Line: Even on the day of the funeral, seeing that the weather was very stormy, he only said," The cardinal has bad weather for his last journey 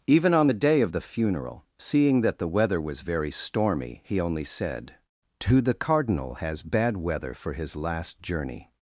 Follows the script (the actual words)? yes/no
no